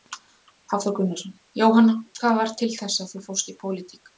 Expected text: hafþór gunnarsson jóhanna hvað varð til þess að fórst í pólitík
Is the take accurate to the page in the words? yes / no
no